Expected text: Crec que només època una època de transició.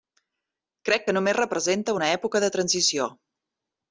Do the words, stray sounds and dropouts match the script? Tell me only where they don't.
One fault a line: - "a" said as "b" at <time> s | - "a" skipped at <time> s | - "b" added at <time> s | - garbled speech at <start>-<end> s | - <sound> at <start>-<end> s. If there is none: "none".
- "època" said as "representa" at 1.4 s